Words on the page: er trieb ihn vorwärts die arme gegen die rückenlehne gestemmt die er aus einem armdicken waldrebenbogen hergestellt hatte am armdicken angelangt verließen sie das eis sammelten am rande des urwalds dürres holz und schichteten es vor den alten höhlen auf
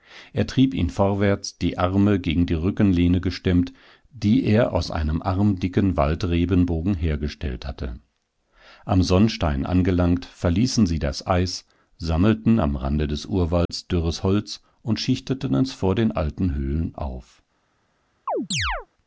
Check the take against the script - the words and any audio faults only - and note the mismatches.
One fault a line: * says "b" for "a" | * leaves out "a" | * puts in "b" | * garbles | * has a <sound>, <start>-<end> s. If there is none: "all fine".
* says "sonnstein" for "armdicken"
* has a dropout, 13.7-13.7 s
* has a chirp, 18.3-18.9 s